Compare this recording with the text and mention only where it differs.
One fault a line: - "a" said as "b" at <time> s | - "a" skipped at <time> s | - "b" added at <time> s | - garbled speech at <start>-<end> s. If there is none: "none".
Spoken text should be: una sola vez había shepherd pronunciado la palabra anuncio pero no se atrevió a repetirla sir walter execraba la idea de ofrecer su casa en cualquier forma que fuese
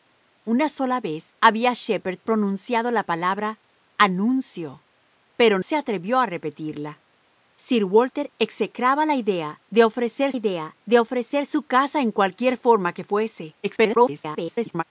- "no" skipped at 5.6 s
- "idea de ofrecer" added at 10.3 s
- garbled speech at 13.6-14.8 s